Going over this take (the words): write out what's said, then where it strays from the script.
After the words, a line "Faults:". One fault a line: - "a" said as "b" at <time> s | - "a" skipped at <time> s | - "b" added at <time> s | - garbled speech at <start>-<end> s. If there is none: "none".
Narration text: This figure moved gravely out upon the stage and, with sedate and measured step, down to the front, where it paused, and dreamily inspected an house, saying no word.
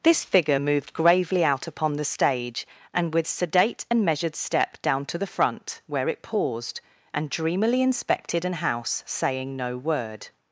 This figure moved gravely out upon the stage and, with sedate and measured step, down to the front, where it paused, and dreamily inspected an house, saying no word.
Faults:
none